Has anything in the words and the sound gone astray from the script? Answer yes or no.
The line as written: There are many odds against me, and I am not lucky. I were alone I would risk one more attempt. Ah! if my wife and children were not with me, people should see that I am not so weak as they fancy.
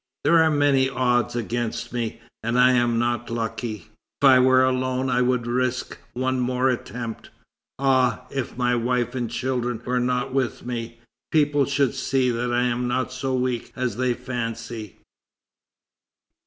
no